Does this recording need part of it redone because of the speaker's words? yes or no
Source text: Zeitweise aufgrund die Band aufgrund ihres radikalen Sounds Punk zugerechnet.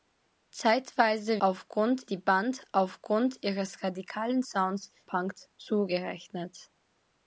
no